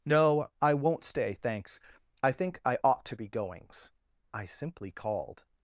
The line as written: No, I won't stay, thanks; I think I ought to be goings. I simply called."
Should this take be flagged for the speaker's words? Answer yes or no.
no